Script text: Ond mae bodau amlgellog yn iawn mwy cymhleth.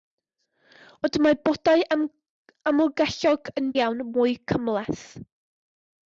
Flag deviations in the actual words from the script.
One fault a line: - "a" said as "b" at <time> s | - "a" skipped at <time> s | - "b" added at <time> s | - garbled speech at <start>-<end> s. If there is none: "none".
none